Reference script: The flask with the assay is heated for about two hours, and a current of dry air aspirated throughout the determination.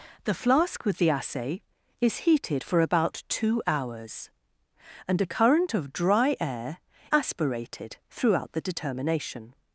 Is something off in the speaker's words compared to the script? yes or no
no